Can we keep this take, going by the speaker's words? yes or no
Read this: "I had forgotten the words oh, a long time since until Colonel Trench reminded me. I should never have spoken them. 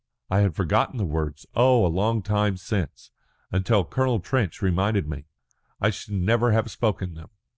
yes